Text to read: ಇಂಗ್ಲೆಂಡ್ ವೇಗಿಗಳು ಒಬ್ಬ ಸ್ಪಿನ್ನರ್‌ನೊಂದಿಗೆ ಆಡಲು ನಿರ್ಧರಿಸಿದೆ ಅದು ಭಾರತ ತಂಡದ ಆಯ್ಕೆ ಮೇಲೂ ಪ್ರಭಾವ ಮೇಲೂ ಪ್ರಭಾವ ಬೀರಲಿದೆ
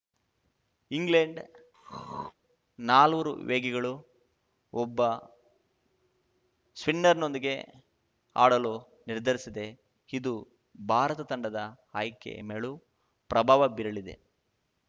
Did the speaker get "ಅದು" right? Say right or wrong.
wrong